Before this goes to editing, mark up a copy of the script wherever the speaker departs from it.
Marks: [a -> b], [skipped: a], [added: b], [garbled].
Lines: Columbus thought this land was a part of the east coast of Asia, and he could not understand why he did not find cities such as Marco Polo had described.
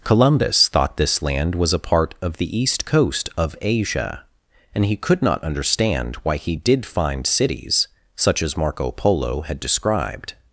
Columbus thought this land was a part of the east coast of Asia, and he could not understand why he did [skipped: not] find cities such as Marco Polo had described.